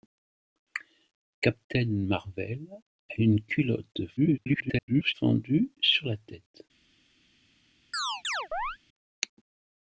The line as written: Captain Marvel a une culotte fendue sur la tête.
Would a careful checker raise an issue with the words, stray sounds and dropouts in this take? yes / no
yes